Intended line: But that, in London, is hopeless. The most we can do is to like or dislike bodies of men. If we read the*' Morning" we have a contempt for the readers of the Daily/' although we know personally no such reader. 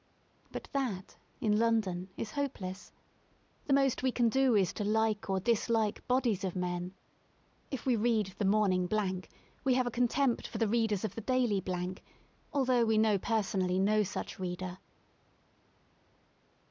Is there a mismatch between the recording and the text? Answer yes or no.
no